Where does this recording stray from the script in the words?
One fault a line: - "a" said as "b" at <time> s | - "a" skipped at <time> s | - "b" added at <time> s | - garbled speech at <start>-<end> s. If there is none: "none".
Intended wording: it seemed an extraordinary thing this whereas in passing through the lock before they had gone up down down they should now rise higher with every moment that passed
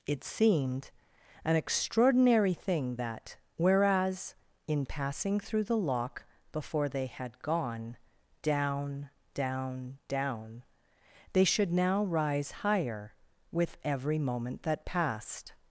- "this" said as "that" at 3.0 s
- "up" said as "down" at 8.4 s